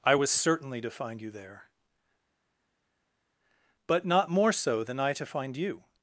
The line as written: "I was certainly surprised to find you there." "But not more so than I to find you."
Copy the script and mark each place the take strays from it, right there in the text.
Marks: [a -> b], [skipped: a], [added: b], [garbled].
"I was certainly [skipped: surprised] to find you there." "But not more so than I to find you."